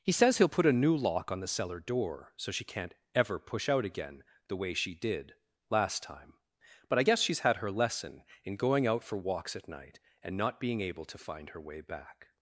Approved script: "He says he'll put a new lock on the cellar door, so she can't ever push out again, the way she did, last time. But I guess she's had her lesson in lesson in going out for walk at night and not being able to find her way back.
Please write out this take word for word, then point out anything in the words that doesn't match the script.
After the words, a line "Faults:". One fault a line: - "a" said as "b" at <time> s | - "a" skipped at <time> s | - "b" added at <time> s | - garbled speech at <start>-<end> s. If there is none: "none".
"He says he'll put a new lock on the cellar door, so she can't ever push out again, the way she did, last time. But I guess she's had her lesson in going out for walks at night and not being able to find her way back.
Faults:
- "lesson in" skipped at 8.6 s
- "walk" said as "walks" at 9.2 s